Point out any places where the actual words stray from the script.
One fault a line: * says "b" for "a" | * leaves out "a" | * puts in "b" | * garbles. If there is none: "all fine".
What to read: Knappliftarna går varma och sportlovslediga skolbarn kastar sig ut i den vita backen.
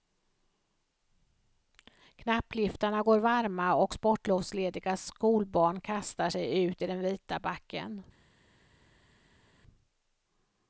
all fine